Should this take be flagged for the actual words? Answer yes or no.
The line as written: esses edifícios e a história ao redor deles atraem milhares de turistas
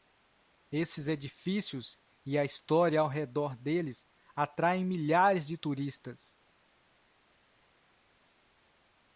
no